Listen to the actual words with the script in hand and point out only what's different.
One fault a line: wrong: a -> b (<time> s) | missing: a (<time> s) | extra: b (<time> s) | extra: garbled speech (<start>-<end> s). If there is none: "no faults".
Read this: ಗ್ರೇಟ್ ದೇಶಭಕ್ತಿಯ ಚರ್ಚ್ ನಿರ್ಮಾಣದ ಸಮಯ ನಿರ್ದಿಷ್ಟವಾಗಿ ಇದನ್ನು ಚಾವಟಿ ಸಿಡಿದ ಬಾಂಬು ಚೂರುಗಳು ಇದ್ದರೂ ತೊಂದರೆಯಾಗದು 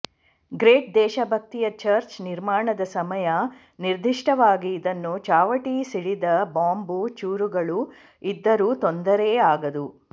no faults